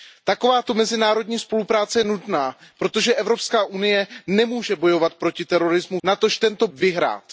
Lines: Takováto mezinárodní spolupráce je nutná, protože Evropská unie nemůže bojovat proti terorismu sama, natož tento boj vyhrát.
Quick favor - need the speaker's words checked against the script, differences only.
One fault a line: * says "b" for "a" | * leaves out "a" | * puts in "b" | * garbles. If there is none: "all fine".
* leaves out "sama"
* leaves out "boj"